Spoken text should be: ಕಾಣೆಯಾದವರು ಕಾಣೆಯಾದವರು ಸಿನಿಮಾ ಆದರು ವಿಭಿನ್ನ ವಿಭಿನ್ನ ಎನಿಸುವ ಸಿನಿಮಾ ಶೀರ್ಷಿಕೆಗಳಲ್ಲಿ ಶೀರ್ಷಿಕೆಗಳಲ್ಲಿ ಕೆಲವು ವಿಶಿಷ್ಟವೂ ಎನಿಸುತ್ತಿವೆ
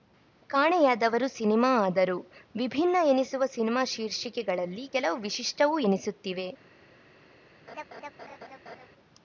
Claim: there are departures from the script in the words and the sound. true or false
true